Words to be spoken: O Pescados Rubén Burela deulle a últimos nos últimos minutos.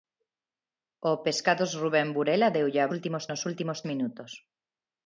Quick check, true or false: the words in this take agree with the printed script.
true